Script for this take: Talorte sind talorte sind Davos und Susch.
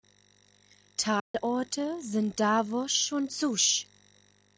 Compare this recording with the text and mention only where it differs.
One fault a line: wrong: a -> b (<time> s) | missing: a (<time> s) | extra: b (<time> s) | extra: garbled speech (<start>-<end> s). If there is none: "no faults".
missing: talorte sind (2.4 s)